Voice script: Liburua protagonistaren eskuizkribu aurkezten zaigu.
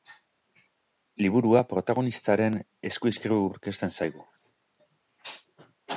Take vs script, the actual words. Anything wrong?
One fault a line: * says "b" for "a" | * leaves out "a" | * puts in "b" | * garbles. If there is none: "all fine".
all fine